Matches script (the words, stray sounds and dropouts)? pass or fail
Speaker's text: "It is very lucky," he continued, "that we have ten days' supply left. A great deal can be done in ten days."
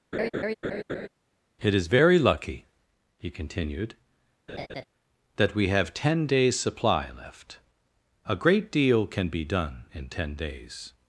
fail